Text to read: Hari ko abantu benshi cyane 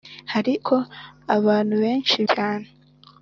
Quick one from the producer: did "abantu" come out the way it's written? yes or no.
yes